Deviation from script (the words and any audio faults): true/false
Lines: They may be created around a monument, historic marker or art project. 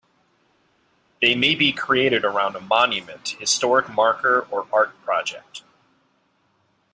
false